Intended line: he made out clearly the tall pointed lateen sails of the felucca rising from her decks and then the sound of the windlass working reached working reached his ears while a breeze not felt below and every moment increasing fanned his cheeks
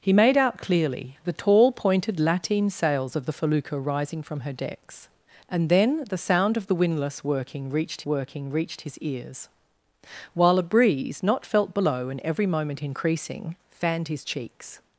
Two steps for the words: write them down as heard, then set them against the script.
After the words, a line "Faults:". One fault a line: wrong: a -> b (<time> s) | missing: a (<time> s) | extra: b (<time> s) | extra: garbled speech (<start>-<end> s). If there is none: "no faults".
he made out clearly the tall pointed lateen sails of the felucca rising from her decks and then the sound of the windlass working reached working reached his ears while a breeze not felt below and every moment increasing fanned his cheeks
Faults:
no faults